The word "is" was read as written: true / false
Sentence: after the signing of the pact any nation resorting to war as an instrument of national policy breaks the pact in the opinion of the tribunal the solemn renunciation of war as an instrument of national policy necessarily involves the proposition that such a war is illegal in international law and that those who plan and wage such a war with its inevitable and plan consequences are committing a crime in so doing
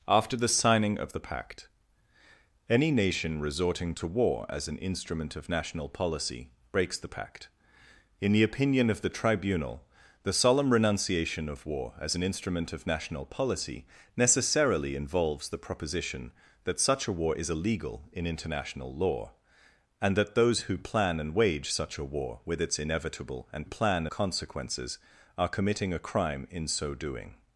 true